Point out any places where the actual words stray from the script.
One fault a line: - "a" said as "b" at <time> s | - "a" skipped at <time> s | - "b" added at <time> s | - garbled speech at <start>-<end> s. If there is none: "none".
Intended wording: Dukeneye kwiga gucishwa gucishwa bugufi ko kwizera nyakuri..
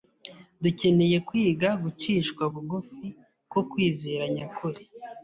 - "gucishwa" skipped at 2.4 s